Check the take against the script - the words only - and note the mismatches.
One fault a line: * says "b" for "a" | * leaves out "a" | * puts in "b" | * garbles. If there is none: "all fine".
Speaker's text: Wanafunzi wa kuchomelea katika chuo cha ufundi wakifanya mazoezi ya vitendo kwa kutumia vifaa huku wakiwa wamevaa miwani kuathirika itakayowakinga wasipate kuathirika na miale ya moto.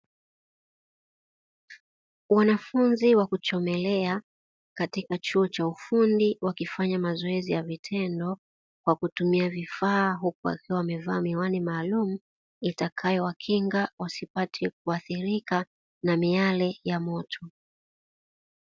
* says "maalumu" for "kuathirika"